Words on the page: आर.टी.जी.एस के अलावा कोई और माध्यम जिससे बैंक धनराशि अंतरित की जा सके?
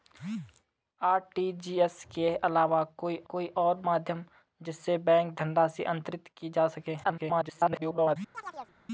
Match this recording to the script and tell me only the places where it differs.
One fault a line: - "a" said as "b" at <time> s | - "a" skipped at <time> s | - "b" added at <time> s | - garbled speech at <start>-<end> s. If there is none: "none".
- "कोई" added at 3.3 s
- garbled speech at 7.0-8.2 s